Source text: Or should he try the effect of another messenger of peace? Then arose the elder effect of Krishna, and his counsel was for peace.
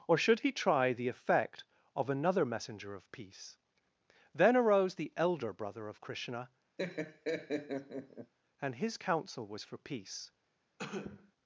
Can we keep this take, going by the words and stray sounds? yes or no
no